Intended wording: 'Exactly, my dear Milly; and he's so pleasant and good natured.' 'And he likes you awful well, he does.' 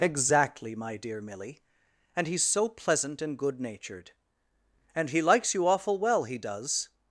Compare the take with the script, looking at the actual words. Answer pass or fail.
pass